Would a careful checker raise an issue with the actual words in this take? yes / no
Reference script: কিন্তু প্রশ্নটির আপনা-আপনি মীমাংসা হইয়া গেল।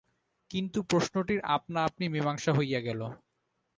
no